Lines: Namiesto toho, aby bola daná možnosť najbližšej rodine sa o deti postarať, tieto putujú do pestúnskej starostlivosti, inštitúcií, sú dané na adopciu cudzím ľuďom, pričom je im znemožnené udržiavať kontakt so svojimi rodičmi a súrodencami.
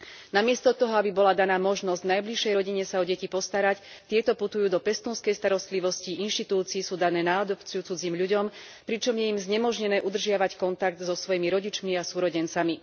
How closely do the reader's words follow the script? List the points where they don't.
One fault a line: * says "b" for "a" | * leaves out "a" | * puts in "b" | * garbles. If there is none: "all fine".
all fine